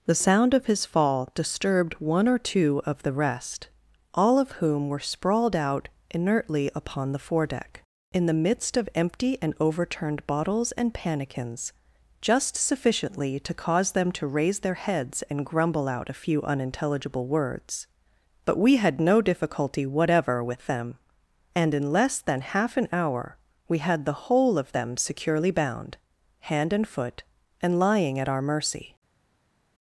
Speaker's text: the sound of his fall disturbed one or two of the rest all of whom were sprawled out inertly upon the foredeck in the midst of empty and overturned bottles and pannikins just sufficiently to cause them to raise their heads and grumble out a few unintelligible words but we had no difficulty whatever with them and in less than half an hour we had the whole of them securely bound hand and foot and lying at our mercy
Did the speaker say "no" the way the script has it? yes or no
yes